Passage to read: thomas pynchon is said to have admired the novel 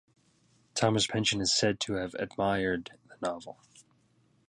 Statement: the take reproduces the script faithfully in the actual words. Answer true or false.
true